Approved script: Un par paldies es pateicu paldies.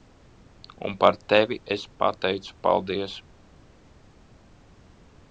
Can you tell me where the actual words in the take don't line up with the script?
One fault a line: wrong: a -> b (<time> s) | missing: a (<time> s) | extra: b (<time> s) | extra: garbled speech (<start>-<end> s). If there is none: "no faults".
wrong: paldies -> tevi (1.3 s)